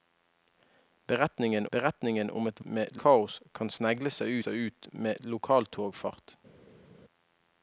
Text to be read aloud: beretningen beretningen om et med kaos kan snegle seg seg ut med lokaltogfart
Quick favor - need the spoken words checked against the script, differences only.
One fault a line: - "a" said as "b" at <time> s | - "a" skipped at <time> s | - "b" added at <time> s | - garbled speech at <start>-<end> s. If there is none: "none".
none